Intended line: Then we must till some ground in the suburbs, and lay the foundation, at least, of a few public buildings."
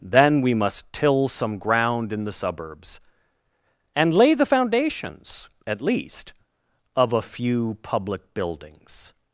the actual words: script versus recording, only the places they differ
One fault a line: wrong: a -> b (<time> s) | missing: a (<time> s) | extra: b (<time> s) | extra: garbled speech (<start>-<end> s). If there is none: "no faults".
wrong: foundation -> foundations (4.4 s)